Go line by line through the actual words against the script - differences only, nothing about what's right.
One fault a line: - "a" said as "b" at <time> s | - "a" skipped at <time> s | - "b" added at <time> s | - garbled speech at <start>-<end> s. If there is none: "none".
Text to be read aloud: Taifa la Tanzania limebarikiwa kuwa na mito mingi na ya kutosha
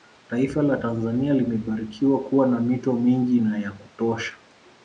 none